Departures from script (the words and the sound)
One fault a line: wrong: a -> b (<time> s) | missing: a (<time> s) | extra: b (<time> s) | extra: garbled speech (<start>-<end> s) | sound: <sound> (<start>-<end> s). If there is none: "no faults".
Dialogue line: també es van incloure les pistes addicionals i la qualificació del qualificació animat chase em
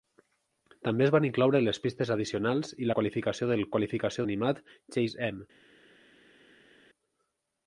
no faults